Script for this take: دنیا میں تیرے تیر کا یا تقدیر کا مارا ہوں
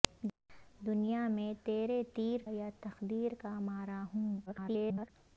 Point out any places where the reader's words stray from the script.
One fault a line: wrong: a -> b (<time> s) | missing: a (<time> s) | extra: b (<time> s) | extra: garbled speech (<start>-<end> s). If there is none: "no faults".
missing: کا (2.4 s)
extra: garbled speech (4.5-5.1 s)